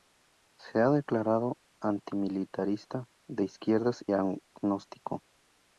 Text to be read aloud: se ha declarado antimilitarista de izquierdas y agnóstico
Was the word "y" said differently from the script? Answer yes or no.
yes